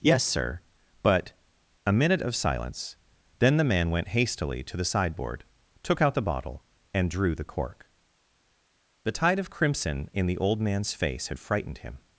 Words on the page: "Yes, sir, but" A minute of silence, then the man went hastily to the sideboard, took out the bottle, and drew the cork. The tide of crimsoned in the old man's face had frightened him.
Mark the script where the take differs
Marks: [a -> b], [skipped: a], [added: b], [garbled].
"Yes, sir, but" A minute of silence, then the man went hastily to the sideboard, took out the bottle, and drew the cork. The tide of [crimsoned -> crimson] in the old man's face had frightened him.